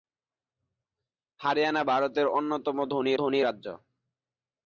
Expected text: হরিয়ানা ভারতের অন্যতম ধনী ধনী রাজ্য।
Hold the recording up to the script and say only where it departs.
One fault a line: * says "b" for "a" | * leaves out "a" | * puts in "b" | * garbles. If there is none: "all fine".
all fine